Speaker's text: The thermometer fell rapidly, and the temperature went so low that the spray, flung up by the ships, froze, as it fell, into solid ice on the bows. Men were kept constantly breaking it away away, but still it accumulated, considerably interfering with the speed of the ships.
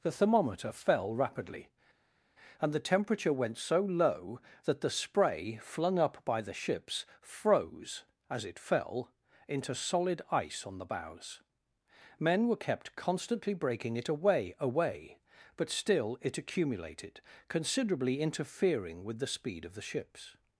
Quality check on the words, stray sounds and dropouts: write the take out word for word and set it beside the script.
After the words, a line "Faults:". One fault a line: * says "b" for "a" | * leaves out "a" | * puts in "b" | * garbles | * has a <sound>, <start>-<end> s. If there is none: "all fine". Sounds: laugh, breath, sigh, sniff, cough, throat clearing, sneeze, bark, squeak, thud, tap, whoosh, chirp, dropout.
The thermometer fell rapidly, and the temperature went so low that the spray, flung up by the ships, froze, as it fell, into solid ice on the bows. Men were kept constantly breaking it away away, but still it accumulated, considerably interfering with the speed of the ships.
Faults:
all fine